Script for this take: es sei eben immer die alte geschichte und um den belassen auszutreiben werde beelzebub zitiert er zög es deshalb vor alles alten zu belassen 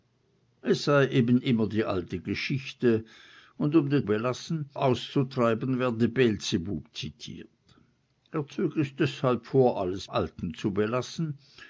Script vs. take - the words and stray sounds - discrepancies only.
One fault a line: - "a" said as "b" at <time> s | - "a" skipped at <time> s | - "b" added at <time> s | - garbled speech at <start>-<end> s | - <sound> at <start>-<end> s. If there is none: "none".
none